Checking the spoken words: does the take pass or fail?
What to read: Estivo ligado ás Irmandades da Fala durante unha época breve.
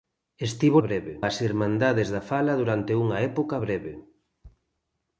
fail